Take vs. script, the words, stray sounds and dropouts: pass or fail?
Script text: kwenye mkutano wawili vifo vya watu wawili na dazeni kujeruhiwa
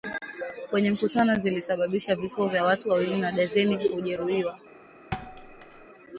fail